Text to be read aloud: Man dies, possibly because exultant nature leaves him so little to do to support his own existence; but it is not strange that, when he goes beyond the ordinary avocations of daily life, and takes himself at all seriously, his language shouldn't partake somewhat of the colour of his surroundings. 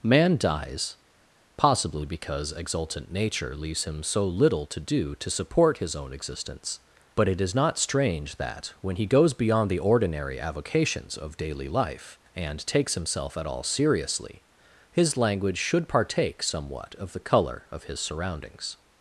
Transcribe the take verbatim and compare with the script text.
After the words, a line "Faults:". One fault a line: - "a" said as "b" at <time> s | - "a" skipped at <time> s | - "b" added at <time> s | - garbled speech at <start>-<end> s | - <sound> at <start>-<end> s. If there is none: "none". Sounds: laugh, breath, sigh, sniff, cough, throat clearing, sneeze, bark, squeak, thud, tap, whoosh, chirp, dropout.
Man dies, possibly because exultant nature leaves him so little to do to support his own existence; but it is not strange that, when he goes beyond the ordinary avocations of daily life, and takes himself at all seriously, his language should partake somewhat of the colour of his surroundings.
Faults:
- "shouldn't" said as "should" at 15.6 s